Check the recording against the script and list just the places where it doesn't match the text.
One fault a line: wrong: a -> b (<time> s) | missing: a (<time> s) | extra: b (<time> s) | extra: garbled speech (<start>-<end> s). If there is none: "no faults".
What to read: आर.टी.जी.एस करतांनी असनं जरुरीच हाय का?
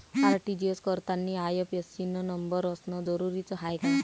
extra: आय.एफ.एस.सी न नंबर (1.4 s)